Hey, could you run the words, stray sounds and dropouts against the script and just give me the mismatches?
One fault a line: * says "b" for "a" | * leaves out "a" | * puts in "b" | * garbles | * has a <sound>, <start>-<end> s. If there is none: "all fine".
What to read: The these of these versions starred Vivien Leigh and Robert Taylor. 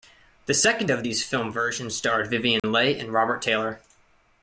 * says "second" for "these"
* puts in "film"
* has a dropout, 2.6-2.6 s